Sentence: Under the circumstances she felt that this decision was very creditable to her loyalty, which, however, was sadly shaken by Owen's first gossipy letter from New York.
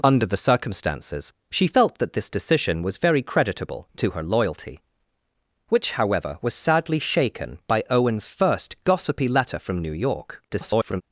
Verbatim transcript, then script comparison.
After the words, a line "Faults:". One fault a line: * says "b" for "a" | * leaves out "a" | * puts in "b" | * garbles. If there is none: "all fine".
Under the circumstances she felt that this decision was very creditable to her loyalty, which, however, was sadly shaken by Owen's first gossipy letter from New York. [garbled]
Faults:
* garbles